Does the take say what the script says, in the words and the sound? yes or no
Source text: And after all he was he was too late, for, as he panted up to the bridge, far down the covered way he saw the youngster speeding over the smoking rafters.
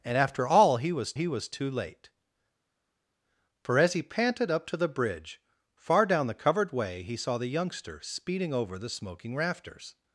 yes